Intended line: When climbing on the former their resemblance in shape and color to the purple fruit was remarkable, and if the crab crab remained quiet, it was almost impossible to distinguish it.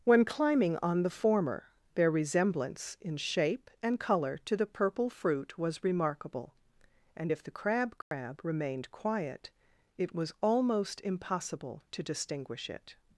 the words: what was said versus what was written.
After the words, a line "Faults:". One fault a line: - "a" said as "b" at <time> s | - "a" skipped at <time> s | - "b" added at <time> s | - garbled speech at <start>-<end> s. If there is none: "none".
When climbing on the former their resemblance in shape and color to the purple fruit was remarkable, and if the crab crab remained quiet, it was almost impossible to distinguish it.
Faults:
none